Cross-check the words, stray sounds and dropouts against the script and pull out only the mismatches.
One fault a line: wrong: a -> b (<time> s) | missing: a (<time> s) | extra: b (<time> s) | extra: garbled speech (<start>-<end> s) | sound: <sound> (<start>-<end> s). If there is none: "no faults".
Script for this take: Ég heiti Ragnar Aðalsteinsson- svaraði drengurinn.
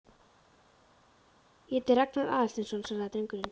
no faults